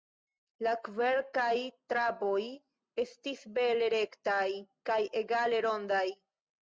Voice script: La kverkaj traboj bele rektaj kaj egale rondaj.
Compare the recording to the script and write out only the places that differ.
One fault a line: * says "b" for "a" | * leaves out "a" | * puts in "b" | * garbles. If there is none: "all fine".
* puts in "estis"